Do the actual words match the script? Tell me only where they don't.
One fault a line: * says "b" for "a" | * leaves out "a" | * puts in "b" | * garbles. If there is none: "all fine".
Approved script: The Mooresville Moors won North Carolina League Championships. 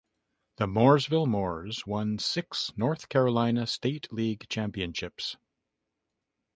* puts in "six"
* puts in "State"